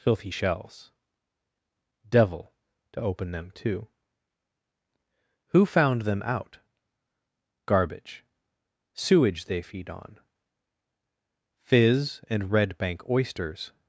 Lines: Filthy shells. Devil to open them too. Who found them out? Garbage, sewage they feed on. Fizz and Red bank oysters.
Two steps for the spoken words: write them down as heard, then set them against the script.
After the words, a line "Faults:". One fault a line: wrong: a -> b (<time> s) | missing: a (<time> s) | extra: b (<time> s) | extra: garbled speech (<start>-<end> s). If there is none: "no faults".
Filthy shells. Devil to open them too. Who found them out? Garbage, sewage they feed on. Fizz and Red bank oysters.
Faults:
no faults